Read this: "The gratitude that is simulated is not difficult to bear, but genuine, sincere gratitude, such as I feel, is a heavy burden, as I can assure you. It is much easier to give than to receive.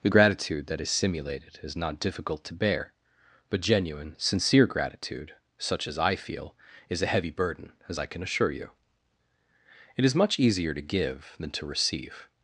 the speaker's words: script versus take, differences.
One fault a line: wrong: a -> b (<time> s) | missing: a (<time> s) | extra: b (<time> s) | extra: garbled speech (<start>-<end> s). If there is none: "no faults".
no faults